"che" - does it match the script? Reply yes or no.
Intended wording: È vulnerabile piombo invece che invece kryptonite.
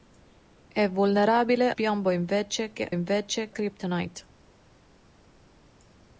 yes